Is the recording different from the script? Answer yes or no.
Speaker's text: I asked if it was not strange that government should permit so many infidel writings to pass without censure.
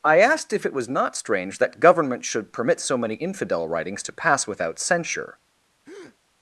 no